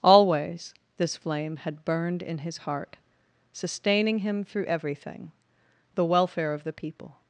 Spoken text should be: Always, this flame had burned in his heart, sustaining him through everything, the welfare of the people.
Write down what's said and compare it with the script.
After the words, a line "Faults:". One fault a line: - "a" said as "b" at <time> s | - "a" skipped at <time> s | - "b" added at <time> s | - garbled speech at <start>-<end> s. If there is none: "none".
Always, this flame had burned in his heart, sustaining him through everything, the welfare of the people.
Faults:
none